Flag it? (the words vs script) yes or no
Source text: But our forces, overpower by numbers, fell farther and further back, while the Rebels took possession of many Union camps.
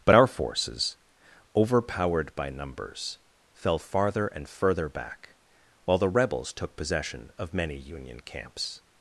yes